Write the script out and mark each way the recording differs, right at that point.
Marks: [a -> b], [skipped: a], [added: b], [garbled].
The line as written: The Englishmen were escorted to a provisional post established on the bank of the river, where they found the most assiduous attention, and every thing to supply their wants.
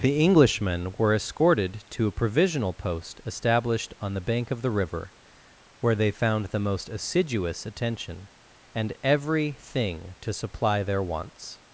The Englishmen were escorted to a provisional post established on the bank of the river, where they found the most assiduous attention, and every thing to supply their wants.